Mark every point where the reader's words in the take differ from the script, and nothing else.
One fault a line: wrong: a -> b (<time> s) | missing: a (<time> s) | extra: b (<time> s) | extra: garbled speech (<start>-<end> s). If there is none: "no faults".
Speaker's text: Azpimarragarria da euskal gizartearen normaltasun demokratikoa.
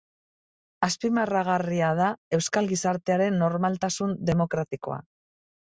no faults